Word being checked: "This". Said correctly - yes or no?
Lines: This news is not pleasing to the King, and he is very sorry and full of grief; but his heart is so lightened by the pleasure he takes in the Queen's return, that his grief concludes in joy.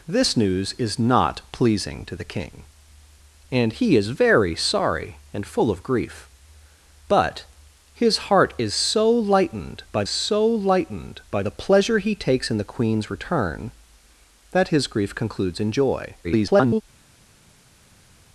yes